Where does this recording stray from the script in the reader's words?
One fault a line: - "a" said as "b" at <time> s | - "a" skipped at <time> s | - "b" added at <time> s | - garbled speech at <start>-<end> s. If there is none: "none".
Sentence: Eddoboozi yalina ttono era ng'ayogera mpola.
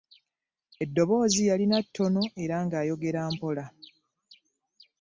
none